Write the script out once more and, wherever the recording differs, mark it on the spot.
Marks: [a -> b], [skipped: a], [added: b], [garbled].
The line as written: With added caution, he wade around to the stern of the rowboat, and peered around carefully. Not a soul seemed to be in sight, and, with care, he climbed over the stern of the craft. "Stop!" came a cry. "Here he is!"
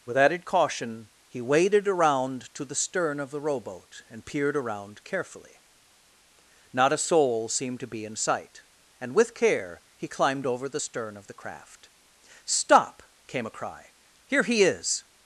With added caution, he [wade -> waded] around to the stern of the rowboat, and peered around carefully. Not a soul seemed to be in sight, and, with care, he climbed over the stern of the craft. "Stop!" came a cry. "Here he is!"